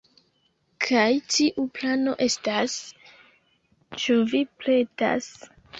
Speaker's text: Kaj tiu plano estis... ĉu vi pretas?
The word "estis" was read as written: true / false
false